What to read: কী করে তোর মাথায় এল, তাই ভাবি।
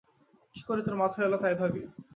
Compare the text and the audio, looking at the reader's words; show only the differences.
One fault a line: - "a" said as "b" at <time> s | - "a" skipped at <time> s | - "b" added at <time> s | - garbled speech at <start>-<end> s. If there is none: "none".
none